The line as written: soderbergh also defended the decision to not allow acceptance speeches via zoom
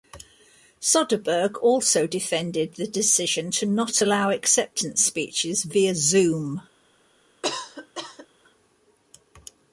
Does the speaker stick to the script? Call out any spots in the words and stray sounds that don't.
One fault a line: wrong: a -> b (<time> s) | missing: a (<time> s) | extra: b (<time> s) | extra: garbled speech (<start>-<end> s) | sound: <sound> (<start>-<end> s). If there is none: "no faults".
sound: cough (7.4-8.3 s)